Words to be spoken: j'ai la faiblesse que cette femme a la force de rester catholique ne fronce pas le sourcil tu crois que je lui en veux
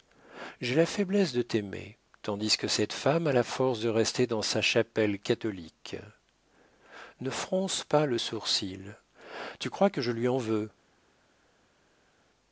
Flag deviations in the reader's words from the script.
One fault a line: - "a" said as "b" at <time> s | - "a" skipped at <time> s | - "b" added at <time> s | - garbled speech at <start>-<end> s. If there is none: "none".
- "de t'aimer tandis" added at 1.3 s
- "dans sa chapelle" added at 4.2 s